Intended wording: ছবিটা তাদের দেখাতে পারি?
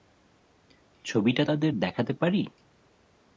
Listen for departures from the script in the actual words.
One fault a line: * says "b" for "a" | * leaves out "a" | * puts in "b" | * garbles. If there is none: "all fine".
all fine